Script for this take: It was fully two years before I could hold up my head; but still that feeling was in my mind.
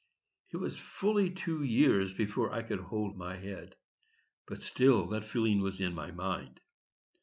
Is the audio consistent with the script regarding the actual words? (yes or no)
no